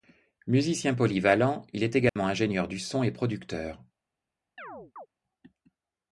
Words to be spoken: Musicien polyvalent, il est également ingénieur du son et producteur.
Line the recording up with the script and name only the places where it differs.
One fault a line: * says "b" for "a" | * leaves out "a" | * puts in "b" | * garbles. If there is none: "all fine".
all fine